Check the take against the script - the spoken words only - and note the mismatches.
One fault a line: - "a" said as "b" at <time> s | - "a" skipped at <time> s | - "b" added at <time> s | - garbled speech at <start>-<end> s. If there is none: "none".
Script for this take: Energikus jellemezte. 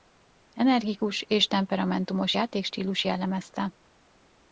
- "és temperamentumos játékstílus" added at 1.2 s